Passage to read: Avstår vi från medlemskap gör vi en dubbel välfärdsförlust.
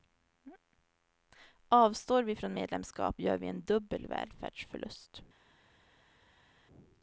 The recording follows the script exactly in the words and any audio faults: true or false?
true